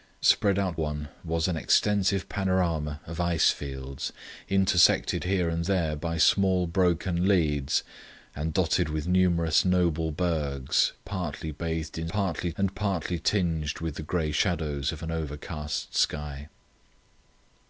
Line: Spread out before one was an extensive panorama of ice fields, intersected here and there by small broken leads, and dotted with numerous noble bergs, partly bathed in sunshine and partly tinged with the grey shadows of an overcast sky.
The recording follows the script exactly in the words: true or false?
false